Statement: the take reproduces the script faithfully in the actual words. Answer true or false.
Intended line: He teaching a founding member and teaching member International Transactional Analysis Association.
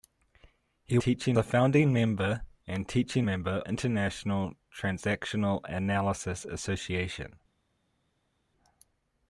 true